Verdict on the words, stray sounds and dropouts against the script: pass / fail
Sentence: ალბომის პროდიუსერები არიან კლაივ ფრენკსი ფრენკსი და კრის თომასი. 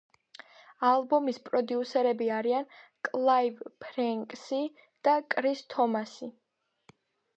fail